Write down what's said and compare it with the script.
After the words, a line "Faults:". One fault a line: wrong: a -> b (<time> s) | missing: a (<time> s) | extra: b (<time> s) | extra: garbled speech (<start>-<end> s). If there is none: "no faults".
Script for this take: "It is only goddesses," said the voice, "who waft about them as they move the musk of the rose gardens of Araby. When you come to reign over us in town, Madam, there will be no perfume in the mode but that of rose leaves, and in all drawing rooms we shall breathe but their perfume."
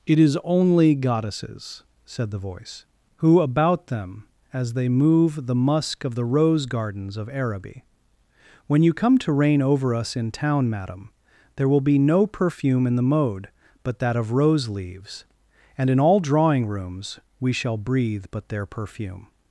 "It is only goddesses," said the voice, "who about them as they move the musk of the rose gardens of Araby. When you come to reign over us in town, Madam, there will be no perfume in the mode but that of rose leaves, and in all drawing rooms we shall breathe but their perfume."
Faults:
missing: waft (3.4 s)